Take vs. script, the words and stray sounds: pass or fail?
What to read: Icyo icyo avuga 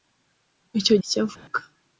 fail